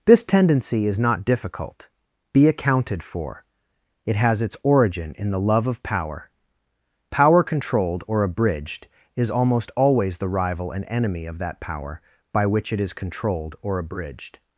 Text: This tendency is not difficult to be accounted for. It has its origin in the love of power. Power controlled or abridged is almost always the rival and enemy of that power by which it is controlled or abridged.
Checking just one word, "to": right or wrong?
wrong